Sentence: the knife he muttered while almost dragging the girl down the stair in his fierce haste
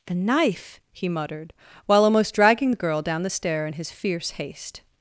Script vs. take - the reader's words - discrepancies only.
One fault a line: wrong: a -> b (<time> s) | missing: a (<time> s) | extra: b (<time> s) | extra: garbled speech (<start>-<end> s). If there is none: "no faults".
no faults